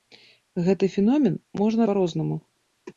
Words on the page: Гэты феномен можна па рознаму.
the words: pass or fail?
pass